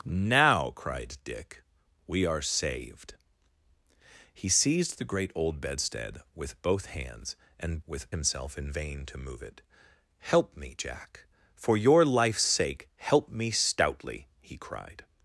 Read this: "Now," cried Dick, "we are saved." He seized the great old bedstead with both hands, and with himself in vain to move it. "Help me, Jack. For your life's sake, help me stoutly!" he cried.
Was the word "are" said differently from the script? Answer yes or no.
no